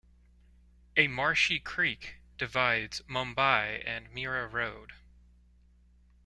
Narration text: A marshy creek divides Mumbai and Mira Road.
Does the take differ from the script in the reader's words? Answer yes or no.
no